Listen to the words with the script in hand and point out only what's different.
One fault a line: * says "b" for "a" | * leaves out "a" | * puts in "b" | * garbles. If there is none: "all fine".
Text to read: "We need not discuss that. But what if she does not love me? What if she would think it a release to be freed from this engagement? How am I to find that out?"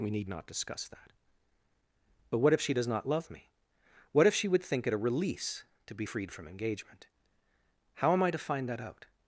* leaves out "this"